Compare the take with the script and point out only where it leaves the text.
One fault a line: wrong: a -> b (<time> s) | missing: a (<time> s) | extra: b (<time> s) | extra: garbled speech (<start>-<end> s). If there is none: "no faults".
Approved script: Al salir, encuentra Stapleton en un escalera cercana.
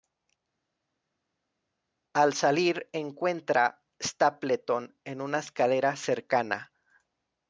wrong: un -> una (5.2 s)